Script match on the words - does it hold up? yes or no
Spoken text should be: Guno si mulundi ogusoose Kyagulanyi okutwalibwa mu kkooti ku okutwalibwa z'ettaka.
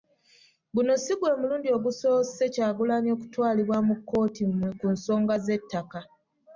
no